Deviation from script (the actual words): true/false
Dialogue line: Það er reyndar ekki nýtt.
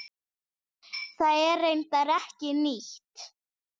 false